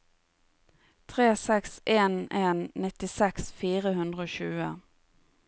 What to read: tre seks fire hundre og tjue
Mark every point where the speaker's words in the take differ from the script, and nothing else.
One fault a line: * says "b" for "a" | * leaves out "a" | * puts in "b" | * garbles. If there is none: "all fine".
* puts in "en en nittiseks"